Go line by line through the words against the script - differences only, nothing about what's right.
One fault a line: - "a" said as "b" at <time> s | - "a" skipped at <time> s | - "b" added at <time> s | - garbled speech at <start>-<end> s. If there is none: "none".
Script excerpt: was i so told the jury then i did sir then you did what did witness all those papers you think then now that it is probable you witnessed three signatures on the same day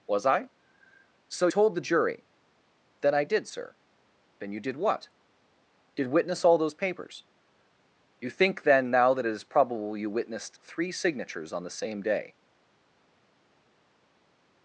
none